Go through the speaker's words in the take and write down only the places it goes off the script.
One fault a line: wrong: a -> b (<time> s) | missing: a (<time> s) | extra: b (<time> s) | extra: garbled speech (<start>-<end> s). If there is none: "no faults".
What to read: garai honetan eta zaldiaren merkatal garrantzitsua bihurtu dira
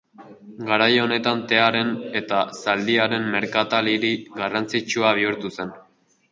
extra: tearen (1.5 s)
extra: hiri (3.9 s)
wrong: dira -> zen (5.6 s)